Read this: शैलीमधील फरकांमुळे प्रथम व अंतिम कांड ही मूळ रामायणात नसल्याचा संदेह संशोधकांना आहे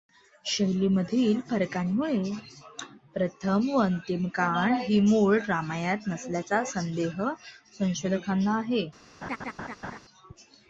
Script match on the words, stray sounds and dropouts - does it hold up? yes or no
no